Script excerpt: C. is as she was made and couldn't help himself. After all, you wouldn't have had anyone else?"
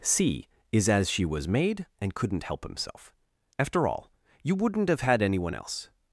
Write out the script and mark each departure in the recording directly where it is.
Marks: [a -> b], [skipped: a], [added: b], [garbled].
C. is as she was made and couldn't help himself. After all, you wouldn't have had anyone else?"